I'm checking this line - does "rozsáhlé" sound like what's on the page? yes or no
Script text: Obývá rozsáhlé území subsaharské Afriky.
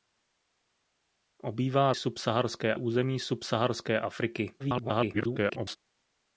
no